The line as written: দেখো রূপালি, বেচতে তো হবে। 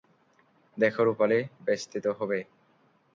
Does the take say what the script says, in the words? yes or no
yes